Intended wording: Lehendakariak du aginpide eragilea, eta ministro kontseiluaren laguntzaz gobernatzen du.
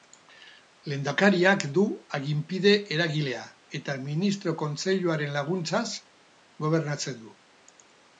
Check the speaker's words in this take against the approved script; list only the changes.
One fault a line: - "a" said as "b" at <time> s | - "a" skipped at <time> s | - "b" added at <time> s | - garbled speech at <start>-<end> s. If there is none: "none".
none